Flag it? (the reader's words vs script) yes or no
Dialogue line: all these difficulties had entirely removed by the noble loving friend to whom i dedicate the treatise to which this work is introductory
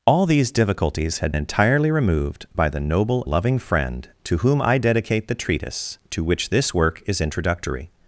no